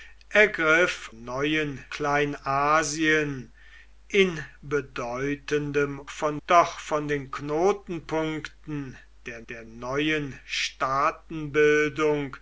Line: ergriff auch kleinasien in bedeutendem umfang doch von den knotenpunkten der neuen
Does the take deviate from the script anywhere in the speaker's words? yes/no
yes